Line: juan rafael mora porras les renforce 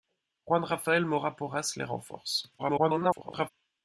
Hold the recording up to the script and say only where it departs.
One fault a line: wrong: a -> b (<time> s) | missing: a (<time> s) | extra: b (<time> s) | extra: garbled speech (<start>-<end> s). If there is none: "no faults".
extra: garbled speech (2.6-3.5 s)